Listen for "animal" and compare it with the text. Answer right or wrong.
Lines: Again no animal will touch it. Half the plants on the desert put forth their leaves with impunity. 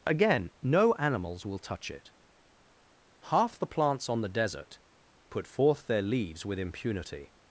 wrong